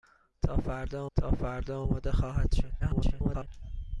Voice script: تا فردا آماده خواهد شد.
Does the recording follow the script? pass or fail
fail